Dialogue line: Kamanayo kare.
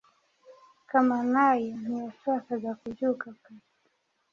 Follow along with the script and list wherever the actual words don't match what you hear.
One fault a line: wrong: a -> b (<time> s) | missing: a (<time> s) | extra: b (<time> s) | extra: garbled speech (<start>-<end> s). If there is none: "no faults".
extra: ntiyashakaga kubyuka (1.8 s)